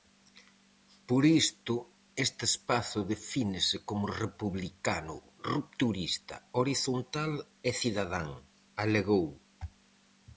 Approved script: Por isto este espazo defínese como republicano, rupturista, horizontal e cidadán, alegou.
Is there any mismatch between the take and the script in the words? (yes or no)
no